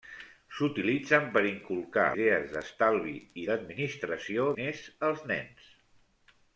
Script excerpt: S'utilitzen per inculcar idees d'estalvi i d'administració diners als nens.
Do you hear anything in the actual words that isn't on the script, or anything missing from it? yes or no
no